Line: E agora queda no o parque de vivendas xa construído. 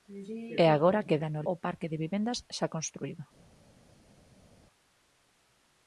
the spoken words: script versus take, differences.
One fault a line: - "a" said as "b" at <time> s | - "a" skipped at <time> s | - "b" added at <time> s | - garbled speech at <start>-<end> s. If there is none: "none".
none